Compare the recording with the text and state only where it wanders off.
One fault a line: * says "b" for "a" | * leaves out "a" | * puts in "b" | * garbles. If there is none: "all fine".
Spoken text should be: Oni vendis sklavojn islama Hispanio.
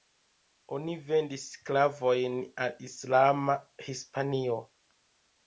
* puts in "al"